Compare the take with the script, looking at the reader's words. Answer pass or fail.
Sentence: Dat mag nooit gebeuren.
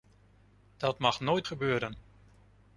pass